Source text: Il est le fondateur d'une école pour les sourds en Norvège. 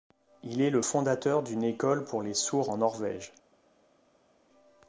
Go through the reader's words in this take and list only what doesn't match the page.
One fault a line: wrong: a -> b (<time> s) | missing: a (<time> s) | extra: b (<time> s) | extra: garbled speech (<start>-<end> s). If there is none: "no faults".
no faults